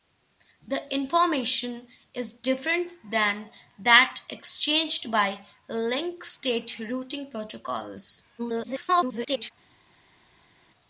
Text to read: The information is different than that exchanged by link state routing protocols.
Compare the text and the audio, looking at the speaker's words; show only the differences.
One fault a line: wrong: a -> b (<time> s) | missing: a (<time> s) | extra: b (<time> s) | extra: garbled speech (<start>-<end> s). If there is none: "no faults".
extra: garbled speech (8.4-9.5 s)